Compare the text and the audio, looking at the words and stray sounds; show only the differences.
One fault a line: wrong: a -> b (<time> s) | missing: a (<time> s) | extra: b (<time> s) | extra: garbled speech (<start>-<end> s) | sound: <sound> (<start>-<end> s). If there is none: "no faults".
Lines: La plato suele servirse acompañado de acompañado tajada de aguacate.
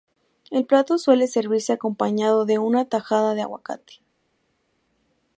wrong: La -> El (0.5 s)
wrong: acompañado -> una (2.6 s)